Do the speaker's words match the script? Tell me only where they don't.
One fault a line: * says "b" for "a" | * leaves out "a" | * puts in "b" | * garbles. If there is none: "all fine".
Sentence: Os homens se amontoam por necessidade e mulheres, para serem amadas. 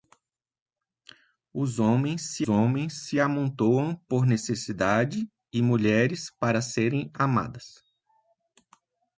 * puts in "homens se"